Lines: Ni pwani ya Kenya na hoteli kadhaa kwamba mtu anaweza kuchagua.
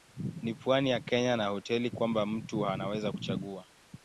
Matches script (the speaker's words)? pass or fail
fail